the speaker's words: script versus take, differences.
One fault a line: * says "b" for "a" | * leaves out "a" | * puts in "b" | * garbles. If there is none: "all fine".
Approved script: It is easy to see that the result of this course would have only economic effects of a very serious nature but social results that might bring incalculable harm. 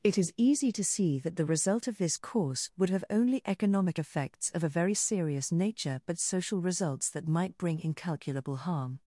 all fine